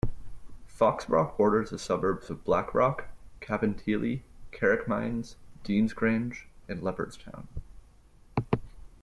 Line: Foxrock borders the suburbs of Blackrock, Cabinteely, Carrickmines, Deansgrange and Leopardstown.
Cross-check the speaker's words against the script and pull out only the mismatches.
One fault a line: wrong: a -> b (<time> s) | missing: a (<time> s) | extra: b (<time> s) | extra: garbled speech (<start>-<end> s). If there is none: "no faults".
no faults